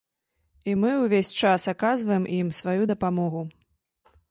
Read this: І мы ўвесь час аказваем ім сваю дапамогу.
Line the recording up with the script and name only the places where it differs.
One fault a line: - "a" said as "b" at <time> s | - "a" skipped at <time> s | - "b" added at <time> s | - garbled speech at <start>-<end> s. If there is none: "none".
none